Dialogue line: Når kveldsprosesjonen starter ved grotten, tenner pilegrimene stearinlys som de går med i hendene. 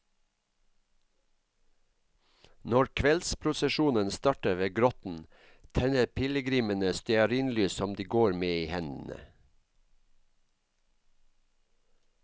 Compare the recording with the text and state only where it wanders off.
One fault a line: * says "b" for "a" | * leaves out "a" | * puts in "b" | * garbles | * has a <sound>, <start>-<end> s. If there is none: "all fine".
all fine